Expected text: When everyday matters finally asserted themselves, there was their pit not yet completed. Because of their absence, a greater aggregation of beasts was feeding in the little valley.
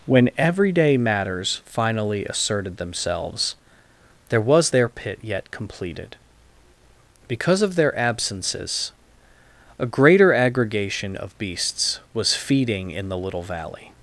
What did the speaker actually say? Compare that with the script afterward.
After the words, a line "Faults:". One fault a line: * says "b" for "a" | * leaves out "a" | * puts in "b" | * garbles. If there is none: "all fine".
When everyday matters finally asserted themselves, there was their pit yet completed. Because of their absences, a greater aggregation of beasts was feeding in the little valley.
Faults:
* leaves out "not"
* says "absences" for "absence"